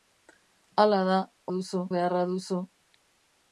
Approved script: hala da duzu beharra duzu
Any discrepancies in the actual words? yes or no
no